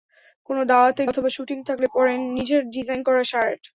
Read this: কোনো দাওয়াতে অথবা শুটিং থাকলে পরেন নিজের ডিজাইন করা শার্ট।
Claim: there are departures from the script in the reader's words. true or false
false